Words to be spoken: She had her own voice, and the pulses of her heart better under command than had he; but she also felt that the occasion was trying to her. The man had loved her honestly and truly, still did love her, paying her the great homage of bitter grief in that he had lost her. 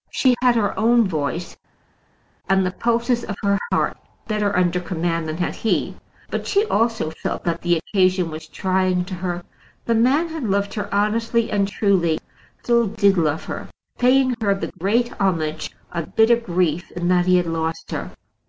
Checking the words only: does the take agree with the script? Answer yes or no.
yes